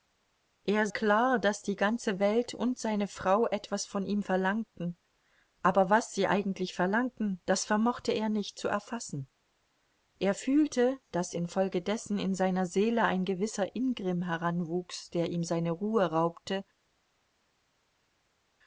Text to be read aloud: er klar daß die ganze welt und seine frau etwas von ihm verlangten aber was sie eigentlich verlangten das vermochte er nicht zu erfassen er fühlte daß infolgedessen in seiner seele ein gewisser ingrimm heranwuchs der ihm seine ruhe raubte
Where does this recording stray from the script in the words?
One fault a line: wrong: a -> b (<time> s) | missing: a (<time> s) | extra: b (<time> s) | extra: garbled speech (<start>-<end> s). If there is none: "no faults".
no faults